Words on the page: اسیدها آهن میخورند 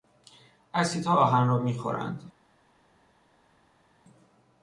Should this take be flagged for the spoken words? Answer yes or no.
yes